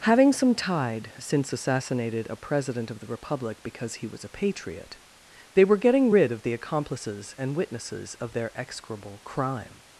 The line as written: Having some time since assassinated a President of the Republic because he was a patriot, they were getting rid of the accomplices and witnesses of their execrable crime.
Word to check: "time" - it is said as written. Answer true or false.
false